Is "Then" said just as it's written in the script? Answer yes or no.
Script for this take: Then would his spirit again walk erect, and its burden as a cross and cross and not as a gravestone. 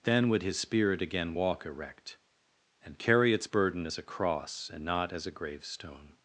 yes